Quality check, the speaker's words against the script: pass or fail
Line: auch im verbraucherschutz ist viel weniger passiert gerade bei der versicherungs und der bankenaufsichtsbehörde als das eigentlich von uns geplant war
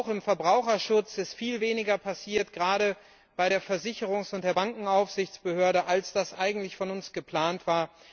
pass